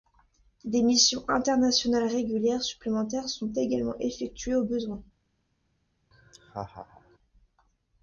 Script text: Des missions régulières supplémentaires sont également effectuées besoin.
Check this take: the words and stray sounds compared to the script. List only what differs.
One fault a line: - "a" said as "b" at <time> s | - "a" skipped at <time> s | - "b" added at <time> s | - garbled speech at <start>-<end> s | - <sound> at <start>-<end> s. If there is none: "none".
- "internationales" added at 1.3 s
- "au" added at 4.5 s
- laugh at 6.1-7.2 s